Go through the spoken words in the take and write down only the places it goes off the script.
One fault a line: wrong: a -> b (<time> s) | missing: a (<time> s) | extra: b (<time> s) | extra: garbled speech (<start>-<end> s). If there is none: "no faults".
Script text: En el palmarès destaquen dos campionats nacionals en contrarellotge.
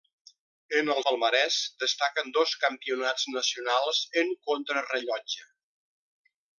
no faults